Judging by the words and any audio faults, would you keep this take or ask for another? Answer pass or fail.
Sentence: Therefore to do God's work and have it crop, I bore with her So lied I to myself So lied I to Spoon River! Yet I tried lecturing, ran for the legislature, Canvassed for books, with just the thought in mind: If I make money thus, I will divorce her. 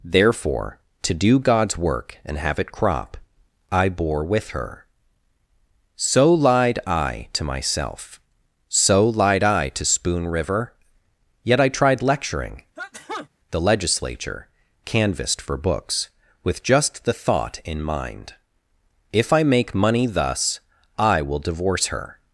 fail